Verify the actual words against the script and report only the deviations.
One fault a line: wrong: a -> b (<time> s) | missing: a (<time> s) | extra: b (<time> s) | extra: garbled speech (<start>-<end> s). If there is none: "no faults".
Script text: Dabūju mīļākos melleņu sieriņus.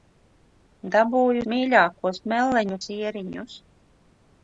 no faults